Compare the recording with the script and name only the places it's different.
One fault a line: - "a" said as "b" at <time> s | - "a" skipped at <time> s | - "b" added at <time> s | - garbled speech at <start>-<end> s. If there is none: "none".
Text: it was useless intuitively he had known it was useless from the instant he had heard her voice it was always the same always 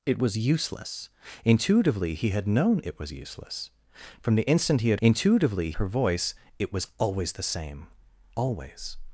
- "heard" said as "intuitively" at 5.0 s